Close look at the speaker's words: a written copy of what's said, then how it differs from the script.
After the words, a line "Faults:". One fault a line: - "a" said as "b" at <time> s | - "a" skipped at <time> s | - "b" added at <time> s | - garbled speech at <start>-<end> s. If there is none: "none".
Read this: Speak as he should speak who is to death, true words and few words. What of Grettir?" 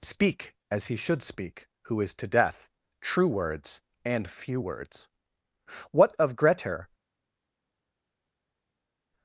Speak as he should speak who is to death, true words and few words. What of Grettir?"
Faults:
none